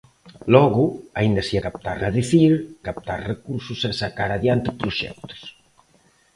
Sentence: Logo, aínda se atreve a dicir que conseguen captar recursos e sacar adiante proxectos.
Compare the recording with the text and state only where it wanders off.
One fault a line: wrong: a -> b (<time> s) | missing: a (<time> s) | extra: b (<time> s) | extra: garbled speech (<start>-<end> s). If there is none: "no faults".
wrong: atreve -> captar (1.6 s)
missing: que conseguen (2.5 s)